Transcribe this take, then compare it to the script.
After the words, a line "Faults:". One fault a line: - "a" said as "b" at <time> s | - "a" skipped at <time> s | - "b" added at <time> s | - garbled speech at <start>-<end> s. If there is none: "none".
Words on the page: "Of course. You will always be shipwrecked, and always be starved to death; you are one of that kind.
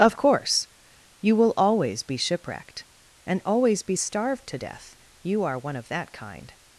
"Of course. You will always be shipwrecked, and always be starved to death; you are one of that kind.
Faults:
none